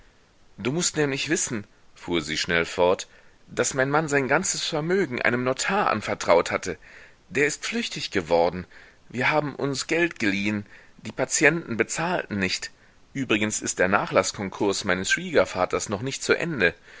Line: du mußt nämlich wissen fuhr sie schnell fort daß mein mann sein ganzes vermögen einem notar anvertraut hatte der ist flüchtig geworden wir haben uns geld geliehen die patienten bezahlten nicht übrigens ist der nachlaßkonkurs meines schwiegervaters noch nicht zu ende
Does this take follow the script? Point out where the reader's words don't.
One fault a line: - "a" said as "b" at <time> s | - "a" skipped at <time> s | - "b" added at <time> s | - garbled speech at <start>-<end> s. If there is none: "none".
none